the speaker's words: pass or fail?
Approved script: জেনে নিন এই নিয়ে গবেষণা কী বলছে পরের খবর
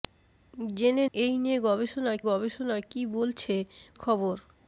fail